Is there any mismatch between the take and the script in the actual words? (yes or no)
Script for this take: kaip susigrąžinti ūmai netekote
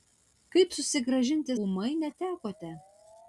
no